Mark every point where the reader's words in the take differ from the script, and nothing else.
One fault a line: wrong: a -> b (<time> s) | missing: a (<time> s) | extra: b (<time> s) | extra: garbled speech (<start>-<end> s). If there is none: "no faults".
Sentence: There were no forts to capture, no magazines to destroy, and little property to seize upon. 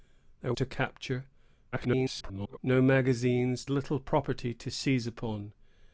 missing: were no forts (0.6 s)
extra: garbled speech (1.7-2.6 s)
missing: to destroy and (3.6 s)